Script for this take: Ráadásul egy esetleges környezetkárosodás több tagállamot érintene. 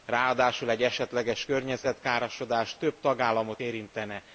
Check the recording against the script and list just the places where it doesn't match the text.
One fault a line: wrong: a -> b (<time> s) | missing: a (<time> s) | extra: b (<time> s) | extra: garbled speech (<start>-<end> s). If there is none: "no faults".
no faults